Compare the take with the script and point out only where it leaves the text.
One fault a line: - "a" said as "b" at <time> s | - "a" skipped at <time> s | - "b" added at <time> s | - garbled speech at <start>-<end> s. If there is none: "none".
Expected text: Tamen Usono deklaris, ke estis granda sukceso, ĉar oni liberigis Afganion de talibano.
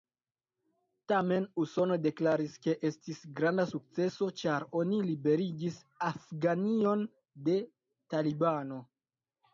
none